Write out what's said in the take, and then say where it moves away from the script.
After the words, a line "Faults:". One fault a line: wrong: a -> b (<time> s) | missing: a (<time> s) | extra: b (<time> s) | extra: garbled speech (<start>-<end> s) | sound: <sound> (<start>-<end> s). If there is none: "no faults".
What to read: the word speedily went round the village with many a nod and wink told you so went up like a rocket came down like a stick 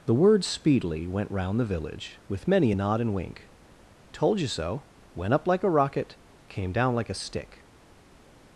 the word speedily went round the village with many a nod and wink told you so went up like a rocket came down like a stick
Faults:
no faults